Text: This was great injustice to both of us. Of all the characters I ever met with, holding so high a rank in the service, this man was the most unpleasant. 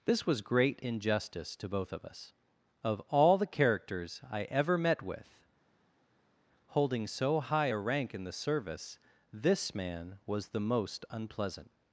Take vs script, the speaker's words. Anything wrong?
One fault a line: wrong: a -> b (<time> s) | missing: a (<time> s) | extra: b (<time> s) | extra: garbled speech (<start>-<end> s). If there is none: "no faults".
no faults